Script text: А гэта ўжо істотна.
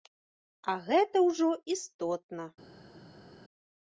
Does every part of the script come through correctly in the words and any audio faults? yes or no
yes